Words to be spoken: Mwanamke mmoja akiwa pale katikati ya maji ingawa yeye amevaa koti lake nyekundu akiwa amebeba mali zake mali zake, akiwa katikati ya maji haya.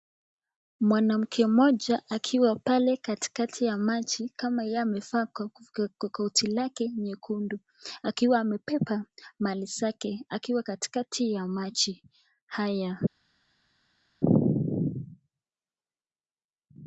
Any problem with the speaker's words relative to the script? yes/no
yes